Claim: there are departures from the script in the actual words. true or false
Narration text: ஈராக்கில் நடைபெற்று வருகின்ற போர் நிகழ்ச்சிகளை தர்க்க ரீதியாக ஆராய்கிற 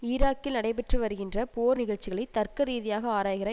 false